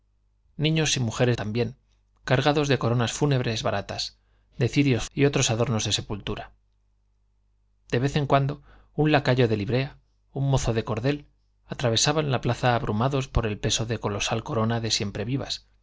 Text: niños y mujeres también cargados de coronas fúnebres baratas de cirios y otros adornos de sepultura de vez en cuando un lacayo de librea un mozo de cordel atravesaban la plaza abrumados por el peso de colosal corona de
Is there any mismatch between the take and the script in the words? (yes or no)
no